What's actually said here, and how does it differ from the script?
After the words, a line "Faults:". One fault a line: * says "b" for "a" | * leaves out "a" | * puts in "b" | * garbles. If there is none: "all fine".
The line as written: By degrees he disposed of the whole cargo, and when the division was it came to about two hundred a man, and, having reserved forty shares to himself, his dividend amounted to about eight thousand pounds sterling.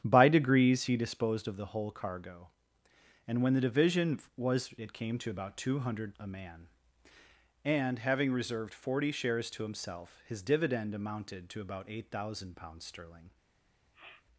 By degrees he disposed of the whole cargo, and when the division was it came to about two hundred a man, and, having reserved forty shares to himself, his dividend amounted to about eight thousand pounds sterling.
Faults:
all fine